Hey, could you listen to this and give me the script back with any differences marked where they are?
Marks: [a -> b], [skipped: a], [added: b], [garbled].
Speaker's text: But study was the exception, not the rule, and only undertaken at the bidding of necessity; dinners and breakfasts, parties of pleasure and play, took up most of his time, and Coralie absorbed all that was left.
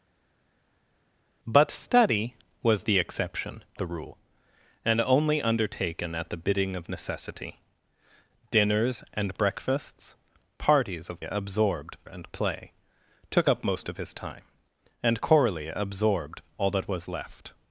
But study was the exception, [skipped: not] the rule, and only undertaken at the bidding of necessity; dinners and breakfasts, parties of [pleasure -> absorbed] and play, took up most of his time, and Coralie absorbed all that was left.